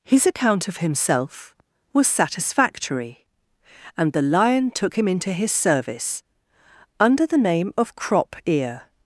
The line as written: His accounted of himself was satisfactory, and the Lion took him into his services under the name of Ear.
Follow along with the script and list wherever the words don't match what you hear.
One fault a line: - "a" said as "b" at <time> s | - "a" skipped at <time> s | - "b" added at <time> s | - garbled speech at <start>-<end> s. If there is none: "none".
- "accounted" said as "account" at 0.2 s
- "services" said as "service" at 5.5 s
- "Crop" added at 8.0 s